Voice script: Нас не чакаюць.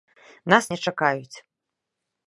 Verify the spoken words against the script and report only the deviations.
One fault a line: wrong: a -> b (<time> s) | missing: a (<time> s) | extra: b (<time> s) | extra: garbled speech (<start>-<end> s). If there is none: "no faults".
no faults